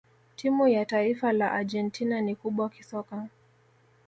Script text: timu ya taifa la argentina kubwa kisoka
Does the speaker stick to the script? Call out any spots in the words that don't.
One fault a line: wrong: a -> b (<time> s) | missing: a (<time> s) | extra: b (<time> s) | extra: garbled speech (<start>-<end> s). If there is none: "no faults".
extra: ni (2.2 s)